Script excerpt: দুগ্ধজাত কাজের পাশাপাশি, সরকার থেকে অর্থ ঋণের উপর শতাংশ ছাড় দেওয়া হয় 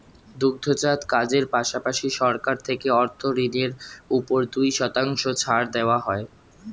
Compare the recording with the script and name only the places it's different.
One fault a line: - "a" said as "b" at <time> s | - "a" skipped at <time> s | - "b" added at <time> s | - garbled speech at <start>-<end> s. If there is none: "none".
- "দুই" added at 4.5 s